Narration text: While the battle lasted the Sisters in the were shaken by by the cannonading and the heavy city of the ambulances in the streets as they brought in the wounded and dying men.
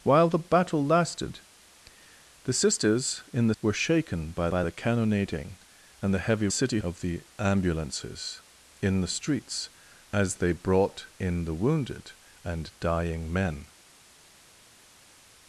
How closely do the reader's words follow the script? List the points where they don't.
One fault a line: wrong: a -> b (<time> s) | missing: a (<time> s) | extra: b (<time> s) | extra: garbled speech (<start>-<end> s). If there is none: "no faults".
no faults